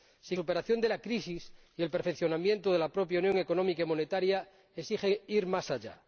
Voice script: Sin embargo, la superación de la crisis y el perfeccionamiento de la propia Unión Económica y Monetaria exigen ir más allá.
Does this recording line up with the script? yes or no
no